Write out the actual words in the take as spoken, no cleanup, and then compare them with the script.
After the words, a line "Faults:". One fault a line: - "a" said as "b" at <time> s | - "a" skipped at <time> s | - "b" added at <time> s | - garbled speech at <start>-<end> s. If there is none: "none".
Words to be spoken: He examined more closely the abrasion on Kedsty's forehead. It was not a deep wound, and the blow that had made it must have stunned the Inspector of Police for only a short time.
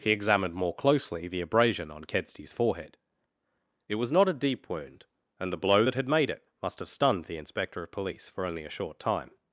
He examined more closely the abrasion on Kedsty's forehead. It was not a deep wound, and the blow that had made it must have stunned the Inspector of Police for only a short time.
Faults:
none